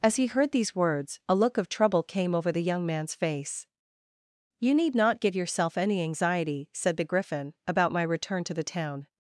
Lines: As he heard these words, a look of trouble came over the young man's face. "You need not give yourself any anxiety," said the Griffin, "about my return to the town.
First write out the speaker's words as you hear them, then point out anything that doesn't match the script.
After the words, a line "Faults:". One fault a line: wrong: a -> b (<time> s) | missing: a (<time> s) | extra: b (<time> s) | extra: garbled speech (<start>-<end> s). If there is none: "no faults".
As he heard these words, a look of trouble came over the young man's face. "You need not give yourself any anxiety," said the Griffin, "about my return to the town.
Faults:
no faults